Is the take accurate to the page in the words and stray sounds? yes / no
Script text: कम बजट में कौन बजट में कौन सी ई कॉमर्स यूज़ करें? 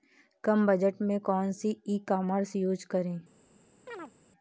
no